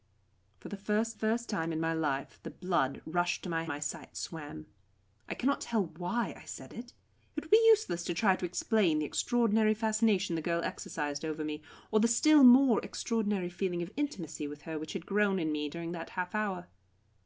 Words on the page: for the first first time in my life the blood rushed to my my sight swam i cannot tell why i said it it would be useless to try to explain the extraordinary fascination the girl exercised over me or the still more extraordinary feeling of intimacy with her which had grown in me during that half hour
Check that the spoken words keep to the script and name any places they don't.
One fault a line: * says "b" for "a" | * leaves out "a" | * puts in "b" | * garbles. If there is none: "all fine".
all fine